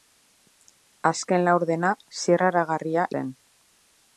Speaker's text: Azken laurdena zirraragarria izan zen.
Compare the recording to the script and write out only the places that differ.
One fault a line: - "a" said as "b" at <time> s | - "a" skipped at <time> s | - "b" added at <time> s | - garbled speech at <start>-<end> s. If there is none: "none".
- "izan" skipped at 3.0 s